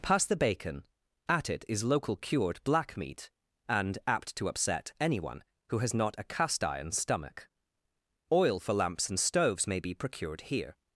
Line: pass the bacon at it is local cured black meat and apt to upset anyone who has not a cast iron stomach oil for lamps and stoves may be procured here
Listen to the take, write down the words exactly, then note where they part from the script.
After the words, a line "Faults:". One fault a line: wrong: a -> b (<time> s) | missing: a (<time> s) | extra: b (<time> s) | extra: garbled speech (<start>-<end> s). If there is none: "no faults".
pass the bacon at it is local cured black meat and apt to upset anyone who has not a cast iron stomach oil for lamps and stoves may be procured here
Faults:
no faults